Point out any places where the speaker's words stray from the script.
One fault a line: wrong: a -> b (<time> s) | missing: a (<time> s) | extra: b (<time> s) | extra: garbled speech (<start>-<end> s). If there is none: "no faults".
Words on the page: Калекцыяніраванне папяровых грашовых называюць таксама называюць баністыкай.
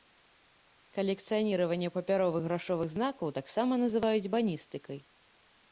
wrong: называюць -> знакаў (3.0 s)